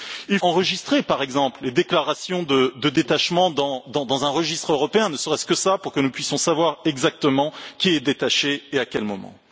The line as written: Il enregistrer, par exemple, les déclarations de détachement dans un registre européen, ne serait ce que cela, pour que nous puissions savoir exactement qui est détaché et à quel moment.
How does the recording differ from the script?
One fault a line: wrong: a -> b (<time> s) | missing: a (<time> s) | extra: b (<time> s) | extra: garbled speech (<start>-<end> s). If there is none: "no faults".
no faults